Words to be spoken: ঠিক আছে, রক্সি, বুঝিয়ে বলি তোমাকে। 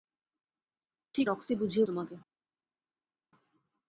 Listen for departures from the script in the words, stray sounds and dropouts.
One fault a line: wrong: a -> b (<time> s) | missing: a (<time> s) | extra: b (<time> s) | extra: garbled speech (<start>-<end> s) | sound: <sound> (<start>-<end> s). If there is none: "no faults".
missing: আছে (1.3 s)
missing: বলি (1.8 s)